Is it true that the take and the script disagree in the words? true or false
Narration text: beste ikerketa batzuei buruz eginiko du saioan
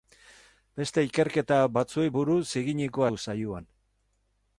false